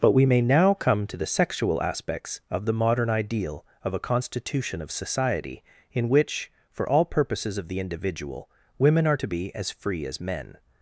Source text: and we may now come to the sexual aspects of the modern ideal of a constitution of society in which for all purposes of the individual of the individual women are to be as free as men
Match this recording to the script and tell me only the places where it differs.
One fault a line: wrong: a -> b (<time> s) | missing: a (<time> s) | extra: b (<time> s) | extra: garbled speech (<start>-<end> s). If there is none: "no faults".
wrong: and -> but (0.0 s)
missing: of the individual (8.5 s)